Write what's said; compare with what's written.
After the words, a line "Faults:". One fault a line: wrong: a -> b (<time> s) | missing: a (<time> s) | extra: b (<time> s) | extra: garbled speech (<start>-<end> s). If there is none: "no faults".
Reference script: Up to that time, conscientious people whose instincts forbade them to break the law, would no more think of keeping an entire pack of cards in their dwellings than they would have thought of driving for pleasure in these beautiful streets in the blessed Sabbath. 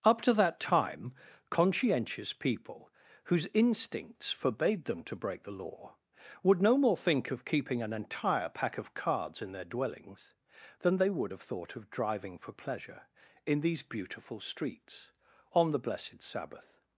Up to that time, conscientious people whose instincts forbade them to break the law, would no more think of keeping an entire pack of cards in their dwellings than they would have thought of driving for pleasure in these beautiful streets on the blessed Sabbath.
Faults:
wrong: in -> on (15.5 s)